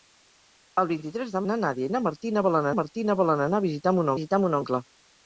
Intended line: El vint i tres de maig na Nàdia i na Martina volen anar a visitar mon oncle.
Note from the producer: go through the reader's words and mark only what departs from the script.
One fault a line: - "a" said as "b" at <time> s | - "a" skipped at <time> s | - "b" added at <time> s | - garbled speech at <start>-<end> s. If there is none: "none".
- "maig" skipped at 1.4 s
- "Martina volen" added at 2.8 s
- "visitar mon" added at 4.1 s